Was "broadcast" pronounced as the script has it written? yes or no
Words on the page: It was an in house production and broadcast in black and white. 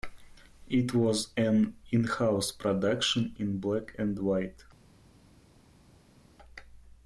no